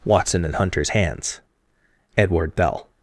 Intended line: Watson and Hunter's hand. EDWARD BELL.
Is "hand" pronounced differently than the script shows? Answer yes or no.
yes